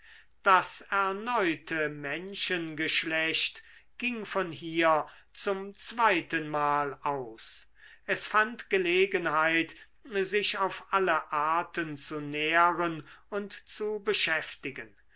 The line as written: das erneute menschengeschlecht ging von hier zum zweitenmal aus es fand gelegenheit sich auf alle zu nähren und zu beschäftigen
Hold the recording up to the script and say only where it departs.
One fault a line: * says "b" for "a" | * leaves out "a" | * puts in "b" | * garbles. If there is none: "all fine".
* puts in "arten"